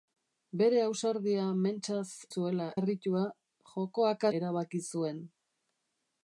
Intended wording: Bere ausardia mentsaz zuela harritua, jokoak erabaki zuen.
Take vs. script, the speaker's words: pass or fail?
pass